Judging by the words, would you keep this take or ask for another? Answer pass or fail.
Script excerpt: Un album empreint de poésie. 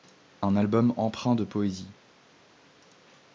pass